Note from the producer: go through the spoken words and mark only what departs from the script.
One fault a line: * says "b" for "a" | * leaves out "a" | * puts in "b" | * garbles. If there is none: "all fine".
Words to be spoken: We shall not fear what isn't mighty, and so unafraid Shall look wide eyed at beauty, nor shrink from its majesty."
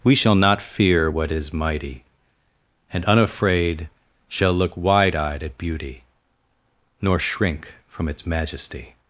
* says "is" for "isn't"
* leaves out "so"